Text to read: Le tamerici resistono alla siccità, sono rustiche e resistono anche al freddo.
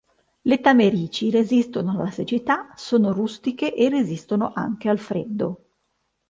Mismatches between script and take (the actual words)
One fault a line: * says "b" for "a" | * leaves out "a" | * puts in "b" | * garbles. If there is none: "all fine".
all fine